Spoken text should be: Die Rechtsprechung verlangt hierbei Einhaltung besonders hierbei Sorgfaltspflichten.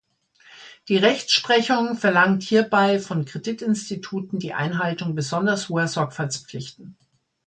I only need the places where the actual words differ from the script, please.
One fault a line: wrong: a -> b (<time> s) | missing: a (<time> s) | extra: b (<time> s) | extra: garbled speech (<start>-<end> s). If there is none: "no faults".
extra: von Kreditinstituten die (3.0 s)
wrong: hierbei -> hoher (5.7 s)